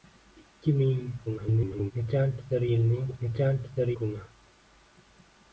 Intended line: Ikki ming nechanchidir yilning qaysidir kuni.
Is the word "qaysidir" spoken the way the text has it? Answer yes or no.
no